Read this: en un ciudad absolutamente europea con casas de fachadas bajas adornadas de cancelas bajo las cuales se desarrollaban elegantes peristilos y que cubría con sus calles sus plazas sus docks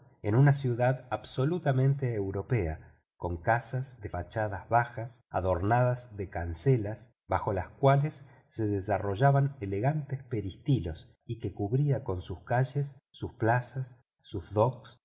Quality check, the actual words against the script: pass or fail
fail